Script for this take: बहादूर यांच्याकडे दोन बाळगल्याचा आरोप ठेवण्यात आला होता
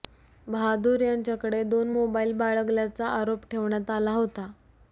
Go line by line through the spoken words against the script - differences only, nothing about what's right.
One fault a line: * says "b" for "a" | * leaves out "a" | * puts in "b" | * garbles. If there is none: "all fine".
* puts in "मोबाईल"